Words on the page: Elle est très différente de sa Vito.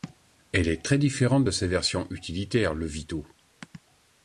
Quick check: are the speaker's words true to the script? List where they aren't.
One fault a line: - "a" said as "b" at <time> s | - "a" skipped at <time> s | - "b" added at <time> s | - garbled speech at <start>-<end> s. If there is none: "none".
- "version utilitaire le" added at 1.7 s